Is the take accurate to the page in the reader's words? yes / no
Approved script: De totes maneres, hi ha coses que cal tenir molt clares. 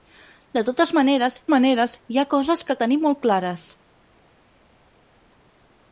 no